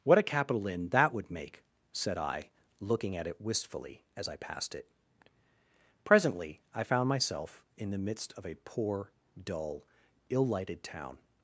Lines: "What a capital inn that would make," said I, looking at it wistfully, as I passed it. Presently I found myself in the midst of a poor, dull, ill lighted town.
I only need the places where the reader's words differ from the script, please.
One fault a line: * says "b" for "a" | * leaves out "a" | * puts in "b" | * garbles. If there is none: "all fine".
all fine